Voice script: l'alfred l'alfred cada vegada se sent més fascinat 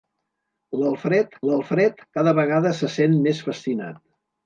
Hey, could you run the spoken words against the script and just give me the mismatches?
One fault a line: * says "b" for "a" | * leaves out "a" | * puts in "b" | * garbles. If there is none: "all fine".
all fine